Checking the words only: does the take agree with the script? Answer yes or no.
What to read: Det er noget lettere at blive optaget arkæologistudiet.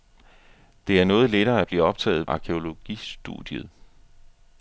yes